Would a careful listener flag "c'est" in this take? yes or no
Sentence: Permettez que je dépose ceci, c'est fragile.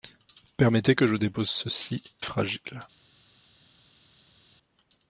yes